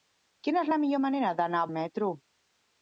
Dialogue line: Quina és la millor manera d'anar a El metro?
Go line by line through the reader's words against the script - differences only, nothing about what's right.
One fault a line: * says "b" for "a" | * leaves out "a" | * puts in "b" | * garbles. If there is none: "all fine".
all fine